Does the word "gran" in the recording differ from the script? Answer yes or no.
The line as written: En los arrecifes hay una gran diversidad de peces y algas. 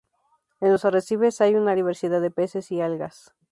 yes